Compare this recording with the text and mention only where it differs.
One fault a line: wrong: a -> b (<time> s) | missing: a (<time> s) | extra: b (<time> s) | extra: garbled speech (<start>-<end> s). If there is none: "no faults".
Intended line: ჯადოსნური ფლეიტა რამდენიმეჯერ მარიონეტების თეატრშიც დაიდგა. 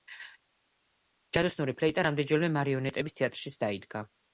no faults